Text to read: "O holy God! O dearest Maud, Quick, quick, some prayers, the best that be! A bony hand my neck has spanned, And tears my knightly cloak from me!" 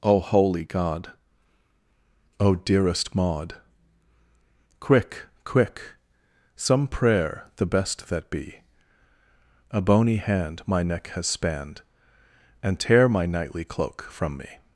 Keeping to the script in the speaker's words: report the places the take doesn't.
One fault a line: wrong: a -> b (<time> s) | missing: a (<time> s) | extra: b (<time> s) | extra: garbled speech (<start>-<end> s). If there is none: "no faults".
wrong: prayers -> prayer (6.9 s)
wrong: tears -> tear (12.8 s)